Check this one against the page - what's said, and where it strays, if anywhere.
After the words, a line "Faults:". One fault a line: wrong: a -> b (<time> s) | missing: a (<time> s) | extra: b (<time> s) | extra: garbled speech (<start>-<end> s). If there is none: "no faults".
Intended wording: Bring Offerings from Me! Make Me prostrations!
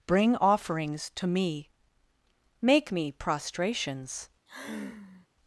Bring Offerings to Me! Make Me prostrations!
Faults:
wrong: from -> to (1.2 s)